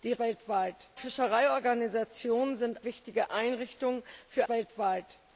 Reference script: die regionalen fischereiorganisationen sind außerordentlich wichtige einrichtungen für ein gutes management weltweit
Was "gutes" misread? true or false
true